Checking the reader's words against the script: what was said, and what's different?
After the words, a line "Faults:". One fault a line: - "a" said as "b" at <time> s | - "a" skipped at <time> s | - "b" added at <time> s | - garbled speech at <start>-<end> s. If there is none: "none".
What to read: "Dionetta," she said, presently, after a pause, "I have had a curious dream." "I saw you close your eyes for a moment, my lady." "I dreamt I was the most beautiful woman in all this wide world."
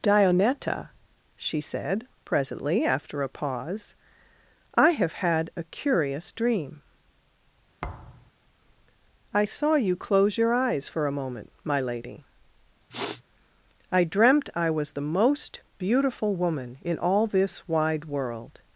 "Dionetta," she said, presently, after a pause, "I have had a curious dream." "I saw you close your eyes for a moment, my lady." "I dreamt I was the most beautiful woman in all this wide world."
Faults:
none